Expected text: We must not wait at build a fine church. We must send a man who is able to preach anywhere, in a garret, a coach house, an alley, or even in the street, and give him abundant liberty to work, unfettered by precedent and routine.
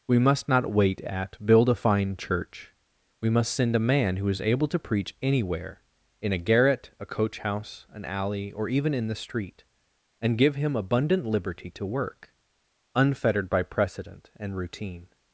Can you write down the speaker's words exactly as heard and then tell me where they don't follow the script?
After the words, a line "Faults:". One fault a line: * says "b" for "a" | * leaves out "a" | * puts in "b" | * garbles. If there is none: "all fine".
We must not wait at build a fine church. We must send a man who is able to preach anywhere, in a garret, a coach house, an alley, or even in the street, and give him abundant liberty to work, unfettered by precedent and routine.
Faults:
all fine